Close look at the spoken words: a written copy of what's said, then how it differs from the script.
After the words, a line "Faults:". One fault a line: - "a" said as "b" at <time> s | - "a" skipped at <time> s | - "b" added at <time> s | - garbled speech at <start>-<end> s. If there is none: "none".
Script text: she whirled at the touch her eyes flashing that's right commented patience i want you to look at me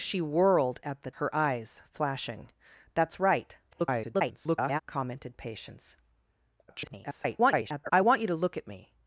she whirled at the her eyes flashing that's right [garbled] commented patience [garbled] i want you to look at me
Faults:
- "touch" skipped at 1.1 s
- garbled speech at 3.7-4.8 s
- garbled speech at 6.7-7.9 s